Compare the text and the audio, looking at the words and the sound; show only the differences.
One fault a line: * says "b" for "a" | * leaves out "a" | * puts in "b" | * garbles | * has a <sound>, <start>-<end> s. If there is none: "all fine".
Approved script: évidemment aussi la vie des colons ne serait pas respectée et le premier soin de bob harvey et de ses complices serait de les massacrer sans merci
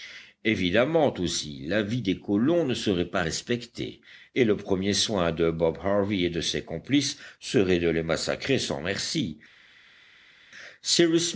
all fine